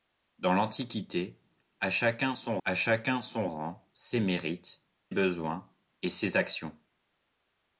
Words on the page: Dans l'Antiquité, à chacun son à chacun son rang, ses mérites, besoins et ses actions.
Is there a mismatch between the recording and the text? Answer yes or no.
no